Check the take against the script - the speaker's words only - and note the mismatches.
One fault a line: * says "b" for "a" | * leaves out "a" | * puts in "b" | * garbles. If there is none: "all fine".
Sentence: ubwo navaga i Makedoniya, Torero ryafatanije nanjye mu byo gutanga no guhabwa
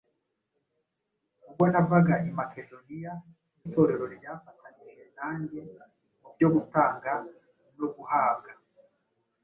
all fine